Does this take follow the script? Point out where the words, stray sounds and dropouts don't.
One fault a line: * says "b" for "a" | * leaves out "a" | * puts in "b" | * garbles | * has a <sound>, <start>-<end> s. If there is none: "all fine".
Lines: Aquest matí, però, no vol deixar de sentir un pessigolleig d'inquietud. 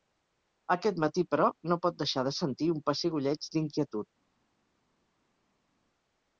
* says "pot" for "vol"